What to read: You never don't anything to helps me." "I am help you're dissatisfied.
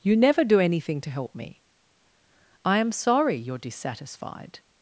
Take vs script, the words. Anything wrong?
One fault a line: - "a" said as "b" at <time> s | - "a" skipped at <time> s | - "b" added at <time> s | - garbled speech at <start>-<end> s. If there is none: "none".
- "don't" said as "do" at 0.4 s
- "helps" said as "help" at 1.1 s
- "help" said as "sorry" at 2.9 s